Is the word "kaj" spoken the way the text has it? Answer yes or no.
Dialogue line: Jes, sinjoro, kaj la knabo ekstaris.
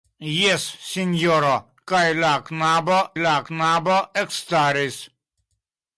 yes